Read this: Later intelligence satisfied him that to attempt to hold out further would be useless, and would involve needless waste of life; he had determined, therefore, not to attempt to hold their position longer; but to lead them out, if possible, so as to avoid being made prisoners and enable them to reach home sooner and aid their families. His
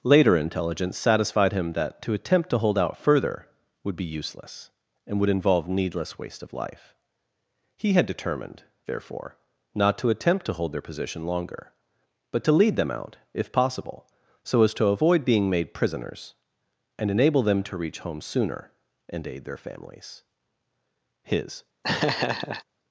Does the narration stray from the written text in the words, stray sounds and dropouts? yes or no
yes